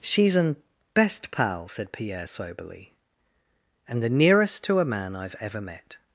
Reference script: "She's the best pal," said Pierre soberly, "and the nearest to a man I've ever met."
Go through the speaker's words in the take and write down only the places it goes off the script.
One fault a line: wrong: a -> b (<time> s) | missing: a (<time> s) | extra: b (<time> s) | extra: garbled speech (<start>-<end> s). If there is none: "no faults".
wrong: the -> an (0.3 s)